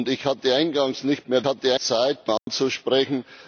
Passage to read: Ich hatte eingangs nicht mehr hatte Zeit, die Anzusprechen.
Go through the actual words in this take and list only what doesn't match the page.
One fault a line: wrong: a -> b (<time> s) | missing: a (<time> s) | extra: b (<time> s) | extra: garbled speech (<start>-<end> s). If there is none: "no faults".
no faults